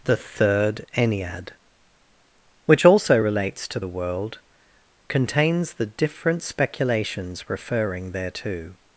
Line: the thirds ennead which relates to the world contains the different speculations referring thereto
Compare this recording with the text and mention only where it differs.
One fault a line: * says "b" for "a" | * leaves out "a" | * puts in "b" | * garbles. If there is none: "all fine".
* says "third" for "thirds"
* puts in "also"